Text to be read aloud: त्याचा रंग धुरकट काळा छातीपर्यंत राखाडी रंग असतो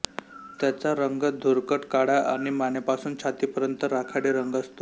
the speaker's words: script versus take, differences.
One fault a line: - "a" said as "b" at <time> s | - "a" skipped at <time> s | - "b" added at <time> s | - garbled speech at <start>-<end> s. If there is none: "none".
- "आणि मानेपासून" added at 2.3 s